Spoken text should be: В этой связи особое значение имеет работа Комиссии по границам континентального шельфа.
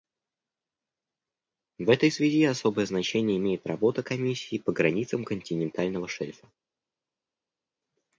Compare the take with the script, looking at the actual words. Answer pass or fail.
pass